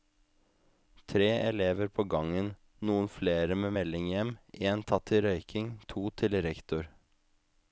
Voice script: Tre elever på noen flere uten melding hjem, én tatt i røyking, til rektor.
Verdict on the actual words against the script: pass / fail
fail